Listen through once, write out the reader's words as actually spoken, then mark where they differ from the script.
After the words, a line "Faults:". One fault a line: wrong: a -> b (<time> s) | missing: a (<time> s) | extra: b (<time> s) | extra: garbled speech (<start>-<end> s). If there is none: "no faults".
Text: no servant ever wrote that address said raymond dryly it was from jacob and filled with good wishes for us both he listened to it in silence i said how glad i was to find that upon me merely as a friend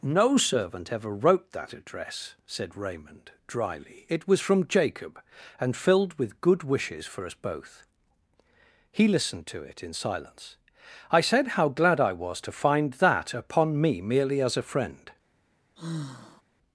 no servant ever wrote that address said raymond dryly it was from jacob and filled with good wishes for us both he listened to it in silence i said how glad i was to find that upon me merely as a friend
Faults:
no faults